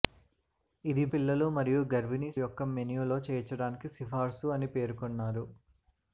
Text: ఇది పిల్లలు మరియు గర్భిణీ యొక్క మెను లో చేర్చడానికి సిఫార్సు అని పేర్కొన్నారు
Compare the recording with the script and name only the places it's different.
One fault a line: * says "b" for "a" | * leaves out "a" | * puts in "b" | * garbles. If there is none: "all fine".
all fine